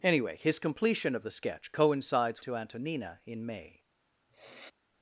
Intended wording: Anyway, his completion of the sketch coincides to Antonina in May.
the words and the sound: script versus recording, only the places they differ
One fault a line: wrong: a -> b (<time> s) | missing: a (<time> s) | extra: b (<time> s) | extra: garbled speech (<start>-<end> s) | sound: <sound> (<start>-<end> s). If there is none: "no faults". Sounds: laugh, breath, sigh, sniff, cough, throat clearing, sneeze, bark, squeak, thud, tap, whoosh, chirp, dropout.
sound: sniff (4.3-4.7 s)